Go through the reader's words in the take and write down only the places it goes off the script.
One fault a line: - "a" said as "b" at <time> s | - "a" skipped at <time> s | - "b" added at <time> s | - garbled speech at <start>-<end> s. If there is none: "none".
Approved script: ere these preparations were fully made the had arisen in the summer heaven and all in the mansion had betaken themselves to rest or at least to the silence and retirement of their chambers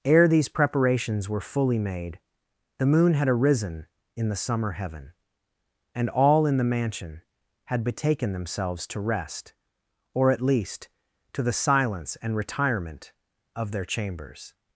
- "moon" added at 2.9 s